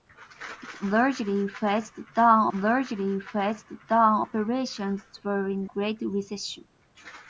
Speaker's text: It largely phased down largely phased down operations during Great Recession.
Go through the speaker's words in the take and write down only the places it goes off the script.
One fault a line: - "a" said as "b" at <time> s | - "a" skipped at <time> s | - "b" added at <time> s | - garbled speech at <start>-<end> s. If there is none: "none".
none